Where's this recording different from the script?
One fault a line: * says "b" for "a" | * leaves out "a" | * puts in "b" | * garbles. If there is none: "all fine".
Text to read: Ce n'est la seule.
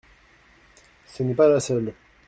* puts in "pas"